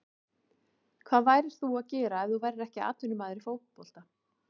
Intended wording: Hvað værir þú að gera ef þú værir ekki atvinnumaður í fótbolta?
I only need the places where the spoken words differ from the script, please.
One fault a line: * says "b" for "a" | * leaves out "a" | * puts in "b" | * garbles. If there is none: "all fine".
all fine